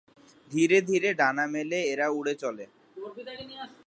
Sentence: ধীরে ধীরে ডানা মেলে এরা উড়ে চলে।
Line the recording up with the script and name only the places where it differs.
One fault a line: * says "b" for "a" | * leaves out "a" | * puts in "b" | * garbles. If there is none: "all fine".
all fine